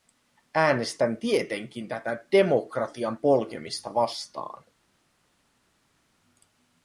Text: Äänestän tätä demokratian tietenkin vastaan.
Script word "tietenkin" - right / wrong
wrong